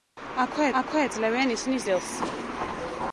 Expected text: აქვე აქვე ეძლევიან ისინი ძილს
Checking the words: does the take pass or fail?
pass